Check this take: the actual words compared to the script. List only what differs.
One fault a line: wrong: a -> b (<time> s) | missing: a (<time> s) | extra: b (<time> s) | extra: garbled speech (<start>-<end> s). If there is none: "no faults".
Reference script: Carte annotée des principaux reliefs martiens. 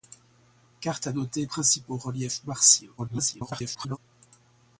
missing: des (1.4 s)
extra: garbled speech (3.0-4.0 s)